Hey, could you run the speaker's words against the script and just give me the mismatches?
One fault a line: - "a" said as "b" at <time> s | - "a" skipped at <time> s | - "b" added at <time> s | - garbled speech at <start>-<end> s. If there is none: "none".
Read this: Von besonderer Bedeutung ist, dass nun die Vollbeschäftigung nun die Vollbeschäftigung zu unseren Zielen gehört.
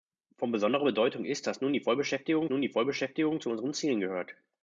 none